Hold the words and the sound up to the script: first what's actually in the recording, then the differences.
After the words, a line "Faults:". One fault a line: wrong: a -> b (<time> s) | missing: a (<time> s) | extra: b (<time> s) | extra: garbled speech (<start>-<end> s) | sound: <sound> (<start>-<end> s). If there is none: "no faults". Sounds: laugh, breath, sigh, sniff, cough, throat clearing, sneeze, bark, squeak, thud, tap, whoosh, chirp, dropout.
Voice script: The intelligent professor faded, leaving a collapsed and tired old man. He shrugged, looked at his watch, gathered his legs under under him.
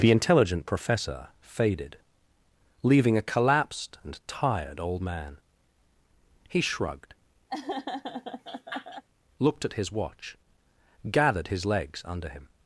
The intelligent professor faded, leaving a collapsed and tired old man. He shrugged, looked at his watch, gathered his legs under him.
Faults:
sound: laugh (7.5-9.0 s)
missing: under (12.3 s)